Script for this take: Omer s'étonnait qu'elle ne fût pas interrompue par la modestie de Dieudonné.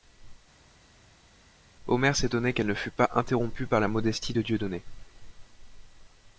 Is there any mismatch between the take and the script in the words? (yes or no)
no